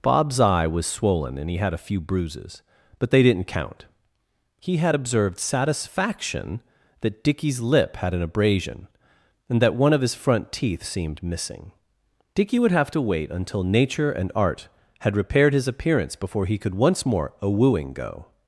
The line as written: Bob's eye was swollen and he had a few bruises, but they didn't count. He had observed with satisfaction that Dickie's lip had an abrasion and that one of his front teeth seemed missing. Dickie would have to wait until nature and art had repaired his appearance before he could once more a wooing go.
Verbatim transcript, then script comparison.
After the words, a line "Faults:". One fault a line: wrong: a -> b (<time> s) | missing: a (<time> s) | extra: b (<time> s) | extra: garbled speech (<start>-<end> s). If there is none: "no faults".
Bob's eye was swollen and he had a few bruises, but they didn't count. He had observed satisfaction that Dickie's lip had an abrasion and that one of his front teeth seemed missing. Dickie would have to wait until nature and art had repaired his appearance before he could once more a wooing go.
Faults:
missing: with (5.4 s)